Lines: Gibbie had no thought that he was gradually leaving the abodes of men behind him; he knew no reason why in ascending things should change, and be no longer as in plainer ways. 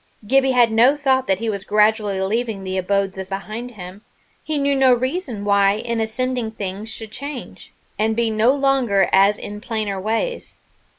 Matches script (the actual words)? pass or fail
fail